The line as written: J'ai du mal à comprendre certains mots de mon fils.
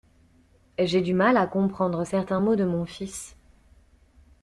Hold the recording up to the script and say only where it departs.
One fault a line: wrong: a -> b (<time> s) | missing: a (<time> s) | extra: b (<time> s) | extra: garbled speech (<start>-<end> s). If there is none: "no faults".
no faults